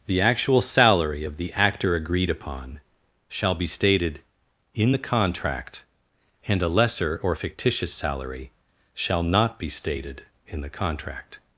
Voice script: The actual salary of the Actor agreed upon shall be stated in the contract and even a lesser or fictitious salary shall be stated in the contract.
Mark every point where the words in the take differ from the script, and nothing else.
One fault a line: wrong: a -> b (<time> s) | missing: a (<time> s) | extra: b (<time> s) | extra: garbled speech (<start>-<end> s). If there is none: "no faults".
missing: even (6.6 s)
extra: not (9.2 s)